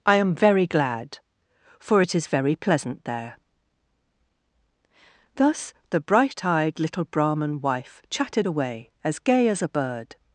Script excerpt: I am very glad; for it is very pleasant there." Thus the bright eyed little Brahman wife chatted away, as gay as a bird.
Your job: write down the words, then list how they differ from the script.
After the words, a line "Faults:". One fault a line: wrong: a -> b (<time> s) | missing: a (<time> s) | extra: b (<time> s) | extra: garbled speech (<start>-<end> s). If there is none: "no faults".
I am very glad; for it is very pleasant there." Thus the bright eyed little Brahman wife chatted away, as gay as a bird.
Faults:
no faults